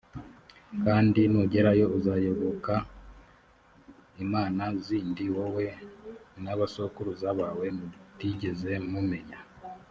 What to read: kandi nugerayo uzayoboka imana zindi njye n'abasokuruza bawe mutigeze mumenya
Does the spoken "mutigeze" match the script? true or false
true